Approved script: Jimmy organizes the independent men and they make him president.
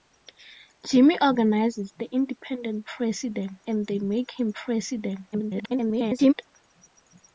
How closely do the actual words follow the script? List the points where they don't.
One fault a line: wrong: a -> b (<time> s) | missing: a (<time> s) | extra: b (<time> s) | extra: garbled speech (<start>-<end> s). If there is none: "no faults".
wrong: men -> president (2.8 s)
extra: garbled speech (5.3-6.3 s)